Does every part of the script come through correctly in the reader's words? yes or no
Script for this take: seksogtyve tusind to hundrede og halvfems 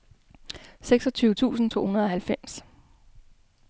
yes